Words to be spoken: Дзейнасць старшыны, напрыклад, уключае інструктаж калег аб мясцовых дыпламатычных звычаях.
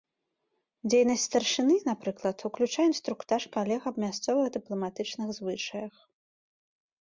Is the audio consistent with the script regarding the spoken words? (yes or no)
yes